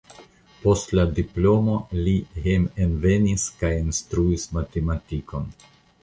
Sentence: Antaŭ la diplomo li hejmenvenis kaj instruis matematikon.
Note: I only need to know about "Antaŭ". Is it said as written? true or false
false